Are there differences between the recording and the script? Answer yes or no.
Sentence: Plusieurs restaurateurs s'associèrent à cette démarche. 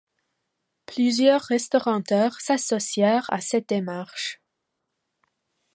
no